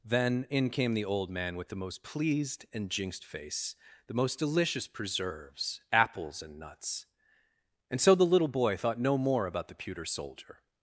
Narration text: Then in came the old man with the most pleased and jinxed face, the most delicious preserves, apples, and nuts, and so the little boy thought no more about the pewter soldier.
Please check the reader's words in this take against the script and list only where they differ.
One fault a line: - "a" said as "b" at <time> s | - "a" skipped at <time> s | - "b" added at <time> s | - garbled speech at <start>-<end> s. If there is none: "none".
none